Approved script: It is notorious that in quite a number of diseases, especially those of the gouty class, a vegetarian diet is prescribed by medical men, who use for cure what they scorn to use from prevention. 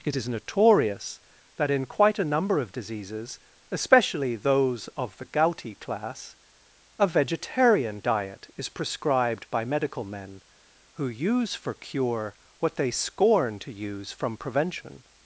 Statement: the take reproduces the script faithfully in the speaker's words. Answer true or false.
true